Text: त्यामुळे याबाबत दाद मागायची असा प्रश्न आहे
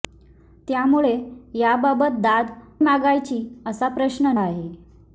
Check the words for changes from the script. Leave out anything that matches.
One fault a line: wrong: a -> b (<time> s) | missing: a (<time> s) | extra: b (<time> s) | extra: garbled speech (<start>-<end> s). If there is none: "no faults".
no faults